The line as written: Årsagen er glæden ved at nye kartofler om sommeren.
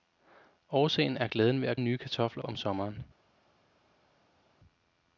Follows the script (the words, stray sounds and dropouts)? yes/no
yes